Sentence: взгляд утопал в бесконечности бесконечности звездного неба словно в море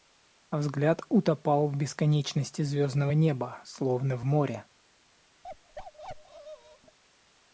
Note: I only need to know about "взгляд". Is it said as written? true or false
true